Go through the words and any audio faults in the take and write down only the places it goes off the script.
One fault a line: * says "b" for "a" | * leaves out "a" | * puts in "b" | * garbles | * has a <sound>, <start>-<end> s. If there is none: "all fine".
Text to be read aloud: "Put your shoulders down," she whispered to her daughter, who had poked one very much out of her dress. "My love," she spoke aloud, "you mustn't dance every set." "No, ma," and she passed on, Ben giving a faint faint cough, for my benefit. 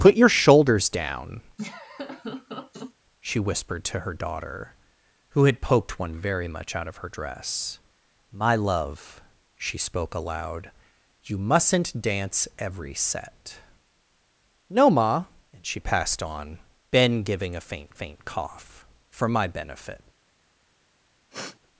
* has a laugh, 1.6-2.9 s
* has a sniff, 21.3-21.6 s